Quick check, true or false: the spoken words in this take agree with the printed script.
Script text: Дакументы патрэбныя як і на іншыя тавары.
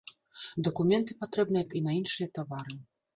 true